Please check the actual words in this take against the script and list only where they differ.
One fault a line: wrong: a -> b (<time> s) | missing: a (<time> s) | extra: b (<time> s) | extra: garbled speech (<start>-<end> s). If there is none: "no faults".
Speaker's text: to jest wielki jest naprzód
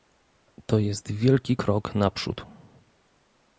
wrong: jest -> krok (1.5 s)